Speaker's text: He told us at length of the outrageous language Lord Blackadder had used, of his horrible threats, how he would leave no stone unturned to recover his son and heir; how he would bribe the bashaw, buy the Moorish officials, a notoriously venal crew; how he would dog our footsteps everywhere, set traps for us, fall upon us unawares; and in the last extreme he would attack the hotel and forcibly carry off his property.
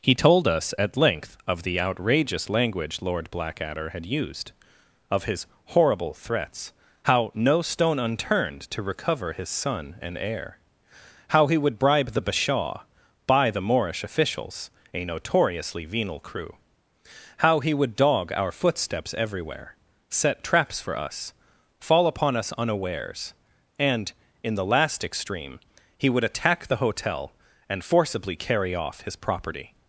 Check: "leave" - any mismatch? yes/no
yes